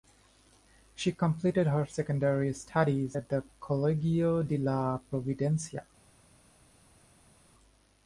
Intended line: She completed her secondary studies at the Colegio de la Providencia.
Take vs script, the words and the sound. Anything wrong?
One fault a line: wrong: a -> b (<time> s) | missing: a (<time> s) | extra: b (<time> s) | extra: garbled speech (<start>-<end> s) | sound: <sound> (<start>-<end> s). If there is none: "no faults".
no faults